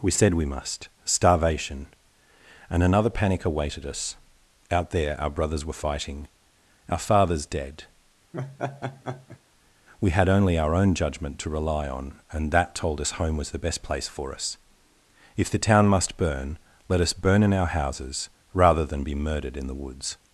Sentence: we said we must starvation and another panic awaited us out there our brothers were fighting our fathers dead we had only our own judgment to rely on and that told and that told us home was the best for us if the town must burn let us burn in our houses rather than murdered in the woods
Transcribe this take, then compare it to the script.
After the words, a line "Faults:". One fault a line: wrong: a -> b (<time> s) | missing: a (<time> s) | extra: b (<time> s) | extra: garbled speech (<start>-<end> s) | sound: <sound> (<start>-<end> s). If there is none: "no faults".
we said we must starvation and another panic awaited us out there our brothers were fighting our fathers dead we had only our own judgment to rely on and that told us home was the best place for us if the town must burn let us burn in our houses rather than be murdered in the woods
Faults:
sound: laugh (8.3-9.4 s)
missing: and that told (13.0 s)
extra: place (13.8 s)
extra: be (19.0 s)